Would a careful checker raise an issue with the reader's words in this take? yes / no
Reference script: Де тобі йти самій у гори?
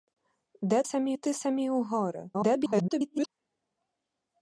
yes